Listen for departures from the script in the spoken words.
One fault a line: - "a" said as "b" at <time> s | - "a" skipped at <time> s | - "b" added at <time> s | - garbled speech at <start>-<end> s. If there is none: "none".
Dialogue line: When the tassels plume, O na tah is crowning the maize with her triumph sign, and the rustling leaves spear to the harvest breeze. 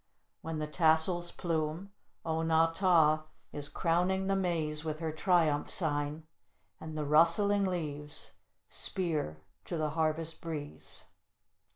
none